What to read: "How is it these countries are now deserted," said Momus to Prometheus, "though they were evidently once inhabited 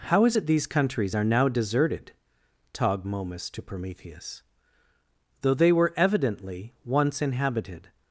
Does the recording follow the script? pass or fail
fail